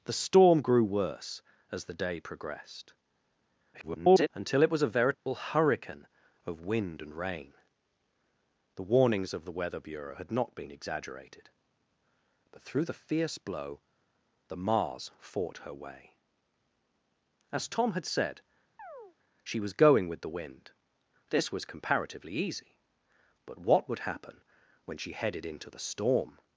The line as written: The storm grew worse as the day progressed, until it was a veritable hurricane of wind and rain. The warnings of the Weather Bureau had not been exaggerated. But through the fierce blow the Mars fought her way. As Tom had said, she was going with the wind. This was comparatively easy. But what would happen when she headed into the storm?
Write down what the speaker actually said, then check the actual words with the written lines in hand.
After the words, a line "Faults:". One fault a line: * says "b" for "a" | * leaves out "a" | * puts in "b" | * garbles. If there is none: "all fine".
The storm grew worse as the day progressed, [garbled] until it was a veritable hurricane of wind and rain. The warnings of the Weather Bureau had not been exaggerated. But through the fierce blow the Mars fought her way. As Tom had said, she was going with the wind. This was comparatively easy. But what would happen when she headed into the storm?
Faults:
* garbles